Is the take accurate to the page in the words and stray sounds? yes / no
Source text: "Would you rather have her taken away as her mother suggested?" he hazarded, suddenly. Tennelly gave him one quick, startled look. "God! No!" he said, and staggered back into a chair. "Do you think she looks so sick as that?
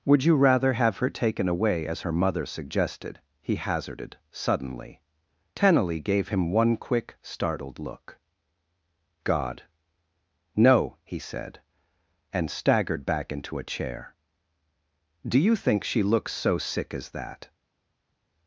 yes